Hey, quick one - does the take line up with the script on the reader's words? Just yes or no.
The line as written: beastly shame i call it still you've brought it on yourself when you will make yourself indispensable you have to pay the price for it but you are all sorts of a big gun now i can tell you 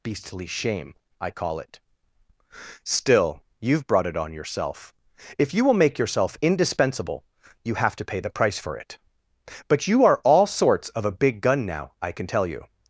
no